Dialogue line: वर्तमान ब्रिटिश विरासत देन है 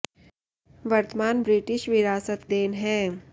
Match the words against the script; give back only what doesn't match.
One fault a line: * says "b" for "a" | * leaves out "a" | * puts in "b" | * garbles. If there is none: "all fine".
all fine